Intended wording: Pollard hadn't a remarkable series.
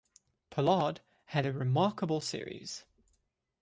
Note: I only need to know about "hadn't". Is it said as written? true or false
false